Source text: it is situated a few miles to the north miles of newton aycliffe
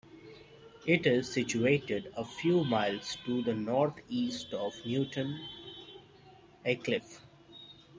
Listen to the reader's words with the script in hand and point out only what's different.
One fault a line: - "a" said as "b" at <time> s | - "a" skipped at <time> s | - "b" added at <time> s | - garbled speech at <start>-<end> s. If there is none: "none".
- "miles" said as "east" at 4.1 s